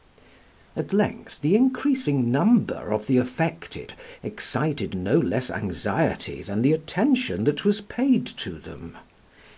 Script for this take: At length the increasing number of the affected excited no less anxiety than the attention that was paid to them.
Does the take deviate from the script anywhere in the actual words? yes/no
no